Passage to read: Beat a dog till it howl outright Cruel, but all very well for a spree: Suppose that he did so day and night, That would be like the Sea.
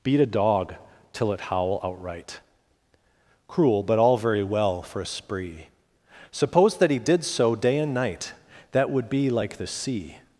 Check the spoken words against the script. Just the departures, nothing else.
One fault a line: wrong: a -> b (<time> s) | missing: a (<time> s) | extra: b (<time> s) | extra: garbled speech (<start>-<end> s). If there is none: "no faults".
no faults